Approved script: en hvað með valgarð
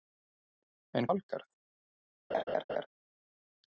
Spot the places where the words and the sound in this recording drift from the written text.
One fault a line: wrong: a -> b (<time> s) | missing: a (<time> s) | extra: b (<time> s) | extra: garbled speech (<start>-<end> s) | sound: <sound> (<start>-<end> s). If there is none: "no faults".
missing: hvað með (1.1 s)
sound: laugh (2.3-2.9 s)